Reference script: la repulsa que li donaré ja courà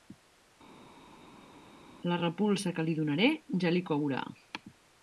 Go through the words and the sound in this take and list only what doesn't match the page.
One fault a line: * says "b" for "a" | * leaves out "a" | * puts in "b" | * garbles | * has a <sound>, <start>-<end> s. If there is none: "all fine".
* puts in "li"